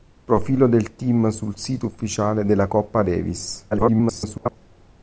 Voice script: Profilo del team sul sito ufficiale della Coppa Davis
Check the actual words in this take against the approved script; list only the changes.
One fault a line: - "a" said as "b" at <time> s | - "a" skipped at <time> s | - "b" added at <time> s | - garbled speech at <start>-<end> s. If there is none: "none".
- garbled speech at 3.7-4.6 s